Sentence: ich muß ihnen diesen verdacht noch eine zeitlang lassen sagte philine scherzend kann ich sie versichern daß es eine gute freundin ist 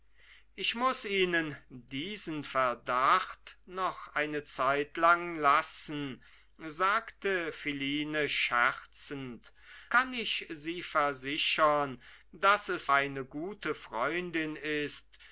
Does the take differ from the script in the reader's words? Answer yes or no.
no